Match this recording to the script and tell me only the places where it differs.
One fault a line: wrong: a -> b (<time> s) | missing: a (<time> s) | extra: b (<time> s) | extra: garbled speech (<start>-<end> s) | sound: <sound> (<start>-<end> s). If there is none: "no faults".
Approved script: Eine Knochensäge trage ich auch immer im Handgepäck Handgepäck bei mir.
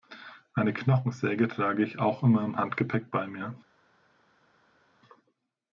missing: Handgepäck (3.1 s)